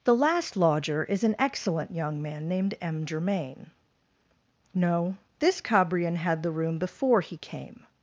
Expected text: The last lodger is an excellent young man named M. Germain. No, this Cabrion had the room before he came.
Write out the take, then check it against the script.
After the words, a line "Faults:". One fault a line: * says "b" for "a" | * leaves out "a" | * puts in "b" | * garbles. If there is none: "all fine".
The last lodger is an excellent young man named M. Germain. No, this Cabrion had the room before he came.
Faults:
all fine